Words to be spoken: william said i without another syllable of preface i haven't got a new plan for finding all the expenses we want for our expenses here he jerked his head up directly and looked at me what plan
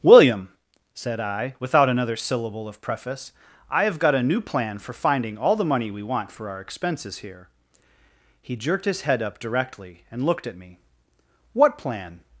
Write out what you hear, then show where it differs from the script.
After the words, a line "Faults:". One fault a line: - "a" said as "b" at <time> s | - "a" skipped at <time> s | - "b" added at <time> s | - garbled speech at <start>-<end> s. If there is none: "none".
william said i without another syllable of preface i have got a new plan for finding all the money we want for our expenses here he jerked his head up directly and looked at me what plan
Faults:
- "haven't" said as "have" at 3.8 s
- "expenses" said as "money" at 5.6 s